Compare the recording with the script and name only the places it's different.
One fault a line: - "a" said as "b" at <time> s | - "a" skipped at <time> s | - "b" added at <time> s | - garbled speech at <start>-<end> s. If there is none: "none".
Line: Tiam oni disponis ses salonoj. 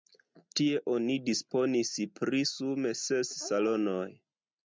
- "Tiam" said as "Tie" at 0.6 s
- "pri sume" added at 2.2 s